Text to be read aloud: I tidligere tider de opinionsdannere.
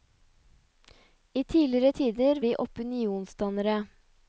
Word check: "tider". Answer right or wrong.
right